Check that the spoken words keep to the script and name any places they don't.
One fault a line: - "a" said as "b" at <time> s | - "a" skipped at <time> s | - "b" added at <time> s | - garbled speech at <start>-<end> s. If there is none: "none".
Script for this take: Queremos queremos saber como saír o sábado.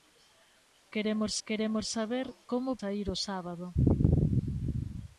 none